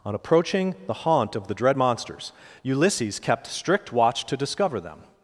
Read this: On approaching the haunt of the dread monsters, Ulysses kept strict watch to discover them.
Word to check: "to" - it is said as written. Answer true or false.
true